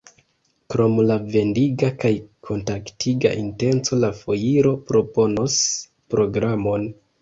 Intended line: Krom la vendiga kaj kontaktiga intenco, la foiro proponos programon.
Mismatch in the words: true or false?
false